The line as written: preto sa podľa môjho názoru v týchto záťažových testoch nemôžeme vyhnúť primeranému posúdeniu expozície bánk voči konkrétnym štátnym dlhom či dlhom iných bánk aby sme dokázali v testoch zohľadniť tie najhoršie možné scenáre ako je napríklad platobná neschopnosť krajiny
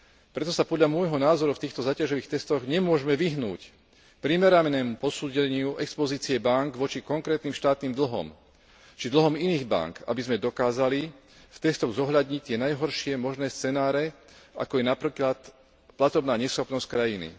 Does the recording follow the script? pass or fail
pass